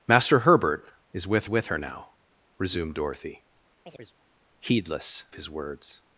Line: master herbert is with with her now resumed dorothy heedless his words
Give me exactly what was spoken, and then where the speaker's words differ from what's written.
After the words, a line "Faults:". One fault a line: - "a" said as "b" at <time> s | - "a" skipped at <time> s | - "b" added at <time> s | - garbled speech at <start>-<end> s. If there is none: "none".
master herbert is with with her now resumed dorothy heedless his words
Faults:
none